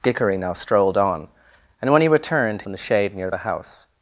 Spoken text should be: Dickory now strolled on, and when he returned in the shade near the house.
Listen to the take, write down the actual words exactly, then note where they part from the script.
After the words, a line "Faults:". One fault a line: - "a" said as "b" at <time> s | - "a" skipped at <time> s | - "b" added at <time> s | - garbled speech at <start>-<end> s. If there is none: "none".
Dickory now strolled on, and when he returned in the shade near the house.
Faults:
none